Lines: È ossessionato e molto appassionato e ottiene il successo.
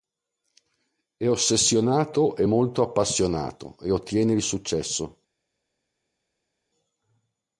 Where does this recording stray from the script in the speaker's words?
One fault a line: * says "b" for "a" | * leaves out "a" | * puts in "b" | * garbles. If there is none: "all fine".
all fine